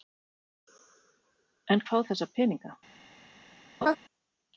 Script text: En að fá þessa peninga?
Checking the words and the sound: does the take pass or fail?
fail